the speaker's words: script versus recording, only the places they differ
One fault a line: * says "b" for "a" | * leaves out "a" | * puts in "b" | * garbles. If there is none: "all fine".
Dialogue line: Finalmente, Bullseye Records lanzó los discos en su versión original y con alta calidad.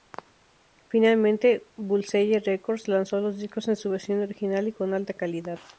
all fine